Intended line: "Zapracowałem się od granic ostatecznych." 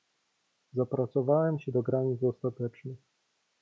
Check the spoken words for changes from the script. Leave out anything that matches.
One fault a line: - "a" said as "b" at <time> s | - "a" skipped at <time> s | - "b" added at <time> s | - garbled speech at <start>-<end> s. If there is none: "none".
- "od" said as "do" at 1.7 s